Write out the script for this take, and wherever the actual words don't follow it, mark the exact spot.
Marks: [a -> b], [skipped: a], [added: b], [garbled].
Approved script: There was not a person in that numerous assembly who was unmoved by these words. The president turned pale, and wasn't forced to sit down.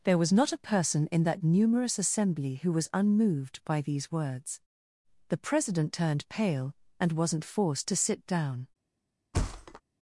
There was not a person in that numerous assembly who was unmoved by these words. The president turned pale, and wasn't forced to sit down.